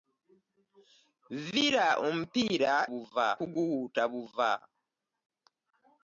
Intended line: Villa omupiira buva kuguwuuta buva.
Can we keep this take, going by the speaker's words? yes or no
yes